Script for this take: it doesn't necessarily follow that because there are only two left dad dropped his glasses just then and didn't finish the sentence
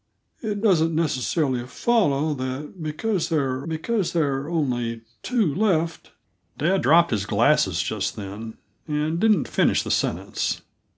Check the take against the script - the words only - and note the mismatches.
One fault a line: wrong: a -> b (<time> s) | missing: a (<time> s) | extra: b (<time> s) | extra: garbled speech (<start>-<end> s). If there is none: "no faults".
extra: because there are (3.7 s)